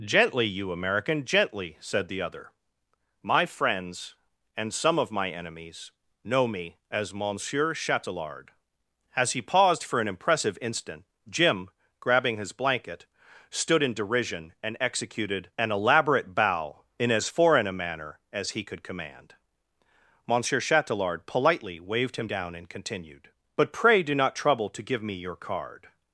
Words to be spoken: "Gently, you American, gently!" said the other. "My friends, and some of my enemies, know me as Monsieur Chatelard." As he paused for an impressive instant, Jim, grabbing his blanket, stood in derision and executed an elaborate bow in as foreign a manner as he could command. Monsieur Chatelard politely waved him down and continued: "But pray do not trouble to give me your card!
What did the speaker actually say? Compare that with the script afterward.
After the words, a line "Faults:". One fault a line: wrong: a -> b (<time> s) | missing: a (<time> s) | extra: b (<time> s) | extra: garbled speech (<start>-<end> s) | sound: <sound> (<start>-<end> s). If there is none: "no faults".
"Gently, you American, gently!" said the other. "My friends, and some of my enemies, know me as Monsieur Chatelard." As he paused for an impressive instant, Jim, grabbing his blanket, stood in derision and executed an elaborate bow in as foreign a manner as he could command. Monsieur Chatelard politely waved him down and continued: "But pray do not trouble to give me your card!
Faults:
no faults